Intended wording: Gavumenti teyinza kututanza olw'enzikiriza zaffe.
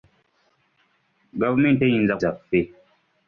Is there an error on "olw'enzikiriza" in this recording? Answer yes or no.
yes